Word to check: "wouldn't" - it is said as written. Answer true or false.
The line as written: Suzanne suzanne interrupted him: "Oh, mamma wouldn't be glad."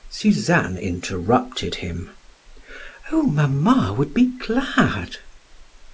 false